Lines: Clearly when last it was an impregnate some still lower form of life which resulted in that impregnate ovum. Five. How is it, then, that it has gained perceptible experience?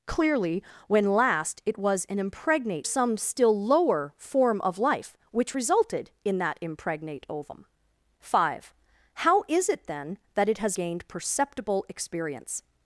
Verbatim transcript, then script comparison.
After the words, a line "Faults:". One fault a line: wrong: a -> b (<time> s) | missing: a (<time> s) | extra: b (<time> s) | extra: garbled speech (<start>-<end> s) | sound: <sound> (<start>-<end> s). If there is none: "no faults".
Clearly when last it was an impregnate some still lower form of life which resulted in that impregnate ovum. Five. How is it, then, that it has gained perceptible experience?
Faults:
no faults